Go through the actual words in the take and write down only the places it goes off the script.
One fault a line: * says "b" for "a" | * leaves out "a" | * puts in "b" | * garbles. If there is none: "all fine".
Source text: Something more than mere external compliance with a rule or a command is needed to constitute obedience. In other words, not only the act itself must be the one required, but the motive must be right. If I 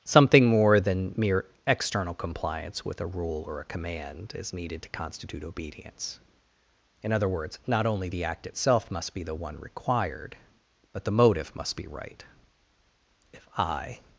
all fine